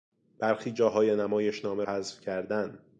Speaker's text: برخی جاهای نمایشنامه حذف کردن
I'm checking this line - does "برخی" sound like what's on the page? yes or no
yes